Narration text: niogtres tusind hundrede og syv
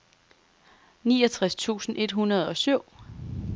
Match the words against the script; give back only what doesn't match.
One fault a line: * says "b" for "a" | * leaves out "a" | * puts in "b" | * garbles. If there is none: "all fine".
* puts in "et"